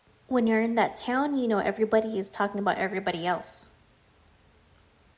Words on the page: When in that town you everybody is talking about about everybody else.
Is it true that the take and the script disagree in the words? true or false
true